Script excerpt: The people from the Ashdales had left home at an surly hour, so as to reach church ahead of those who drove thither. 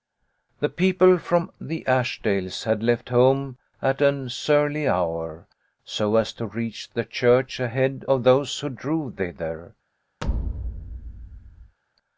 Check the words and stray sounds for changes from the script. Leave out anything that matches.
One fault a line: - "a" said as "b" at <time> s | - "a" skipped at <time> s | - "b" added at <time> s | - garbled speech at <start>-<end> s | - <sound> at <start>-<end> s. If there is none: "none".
- "the" added at 6.9 s
- thud at 10.2-11.8 s